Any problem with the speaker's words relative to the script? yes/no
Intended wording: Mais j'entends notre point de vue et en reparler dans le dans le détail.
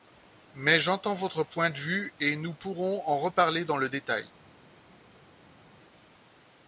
yes